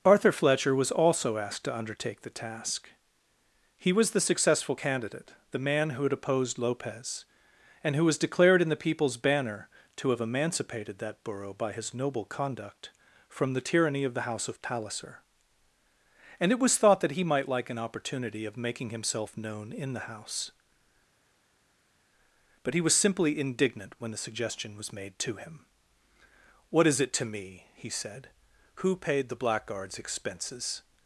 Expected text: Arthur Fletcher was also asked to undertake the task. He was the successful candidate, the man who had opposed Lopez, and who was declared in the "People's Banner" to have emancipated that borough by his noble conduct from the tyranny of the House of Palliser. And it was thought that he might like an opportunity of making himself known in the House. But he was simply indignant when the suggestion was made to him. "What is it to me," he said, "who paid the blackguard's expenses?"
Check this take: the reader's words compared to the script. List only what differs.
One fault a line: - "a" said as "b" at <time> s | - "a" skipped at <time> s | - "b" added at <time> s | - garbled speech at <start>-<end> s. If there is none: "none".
none